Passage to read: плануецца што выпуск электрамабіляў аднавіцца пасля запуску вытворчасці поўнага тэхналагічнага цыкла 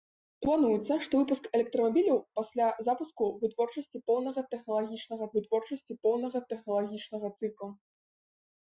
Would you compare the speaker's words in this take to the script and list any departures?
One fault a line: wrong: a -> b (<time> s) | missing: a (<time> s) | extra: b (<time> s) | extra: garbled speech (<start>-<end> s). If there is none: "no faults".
missing: аднавіцца (2.2 s)
extra: вытворчасці поўнага тэхналагічнага (5.4 s)